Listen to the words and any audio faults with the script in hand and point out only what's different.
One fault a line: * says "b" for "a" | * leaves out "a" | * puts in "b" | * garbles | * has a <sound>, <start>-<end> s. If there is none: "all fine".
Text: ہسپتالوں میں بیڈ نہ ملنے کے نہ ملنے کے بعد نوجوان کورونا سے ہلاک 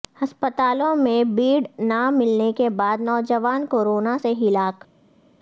* leaves out "نہ ملنے کے"